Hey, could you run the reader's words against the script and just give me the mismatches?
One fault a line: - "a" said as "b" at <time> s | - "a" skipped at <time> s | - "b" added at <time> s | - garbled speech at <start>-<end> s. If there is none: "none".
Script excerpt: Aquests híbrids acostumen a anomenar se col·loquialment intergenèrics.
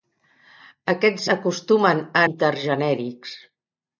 - "híbrids" skipped at 1.3 s
- "anomenar se col·loquialment" skipped at 2.2 s